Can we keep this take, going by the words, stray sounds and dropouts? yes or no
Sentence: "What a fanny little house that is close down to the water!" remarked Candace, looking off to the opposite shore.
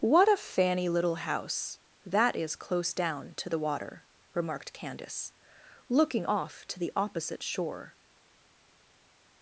yes